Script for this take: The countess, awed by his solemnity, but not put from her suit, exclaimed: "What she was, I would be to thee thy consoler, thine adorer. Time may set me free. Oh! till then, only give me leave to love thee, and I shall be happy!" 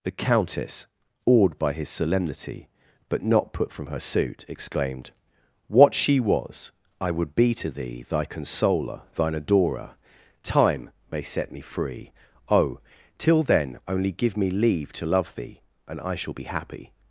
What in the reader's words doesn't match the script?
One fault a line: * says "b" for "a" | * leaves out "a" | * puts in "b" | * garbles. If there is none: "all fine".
all fine